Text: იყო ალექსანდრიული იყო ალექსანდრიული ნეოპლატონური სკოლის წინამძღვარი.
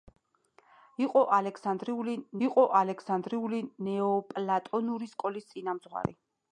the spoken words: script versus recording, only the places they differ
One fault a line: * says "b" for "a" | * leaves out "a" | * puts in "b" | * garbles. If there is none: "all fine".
all fine